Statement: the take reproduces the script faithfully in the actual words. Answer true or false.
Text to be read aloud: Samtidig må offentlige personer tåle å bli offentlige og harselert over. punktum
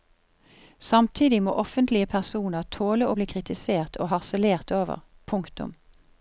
false